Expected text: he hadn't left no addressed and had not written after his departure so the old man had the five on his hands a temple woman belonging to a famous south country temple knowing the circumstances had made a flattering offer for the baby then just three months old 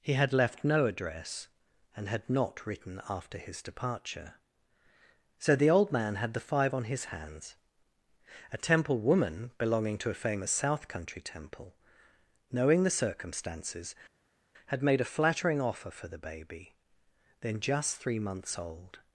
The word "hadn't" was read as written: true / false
false